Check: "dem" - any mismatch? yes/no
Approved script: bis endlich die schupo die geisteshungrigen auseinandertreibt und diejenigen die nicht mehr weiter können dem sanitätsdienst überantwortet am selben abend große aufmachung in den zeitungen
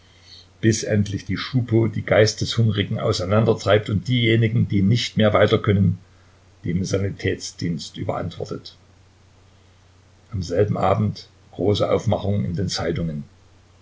no